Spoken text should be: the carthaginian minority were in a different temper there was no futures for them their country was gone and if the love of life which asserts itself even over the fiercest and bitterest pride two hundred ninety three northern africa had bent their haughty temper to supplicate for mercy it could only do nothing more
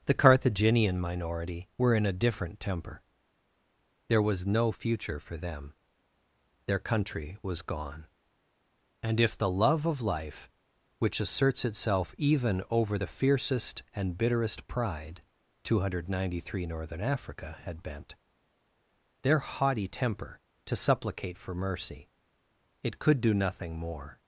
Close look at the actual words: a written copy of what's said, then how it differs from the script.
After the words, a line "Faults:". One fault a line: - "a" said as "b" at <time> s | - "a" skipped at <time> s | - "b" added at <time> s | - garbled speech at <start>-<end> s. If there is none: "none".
the carthaginian minority were in a different temper there was no future for them their country was gone and if the love of life which asserts itself even over the fiercest and bitterest pride two hundred ninety three northern africa had bent their haughty temper to supplicate for mercy it could do nothing more
Faults:
- "futures" said as "future" at 4.7 s
- "only" skipped at 23.2 s